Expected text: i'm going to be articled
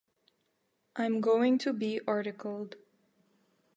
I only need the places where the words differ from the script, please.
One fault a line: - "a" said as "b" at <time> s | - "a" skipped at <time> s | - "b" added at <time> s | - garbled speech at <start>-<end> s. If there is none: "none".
none